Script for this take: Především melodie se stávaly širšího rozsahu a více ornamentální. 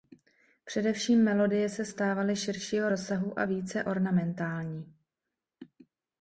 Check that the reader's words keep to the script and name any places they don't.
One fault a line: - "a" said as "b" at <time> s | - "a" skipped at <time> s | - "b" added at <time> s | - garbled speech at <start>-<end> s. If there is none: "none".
none